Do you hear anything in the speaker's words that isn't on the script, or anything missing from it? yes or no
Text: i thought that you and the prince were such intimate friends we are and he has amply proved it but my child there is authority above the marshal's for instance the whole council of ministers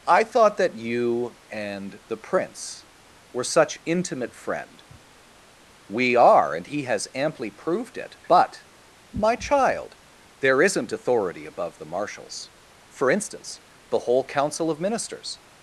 yes